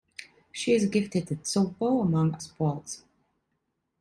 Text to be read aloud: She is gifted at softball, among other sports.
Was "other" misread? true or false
true